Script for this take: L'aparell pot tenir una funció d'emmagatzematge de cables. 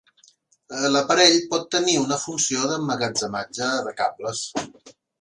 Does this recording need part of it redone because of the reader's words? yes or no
no